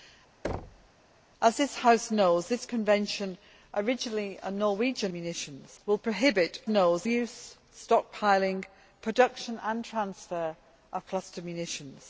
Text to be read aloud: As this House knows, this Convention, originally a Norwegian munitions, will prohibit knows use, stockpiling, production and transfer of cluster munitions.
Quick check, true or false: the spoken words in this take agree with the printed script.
true